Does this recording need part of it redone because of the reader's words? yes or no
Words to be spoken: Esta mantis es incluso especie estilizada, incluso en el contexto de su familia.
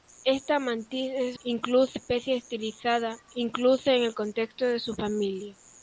no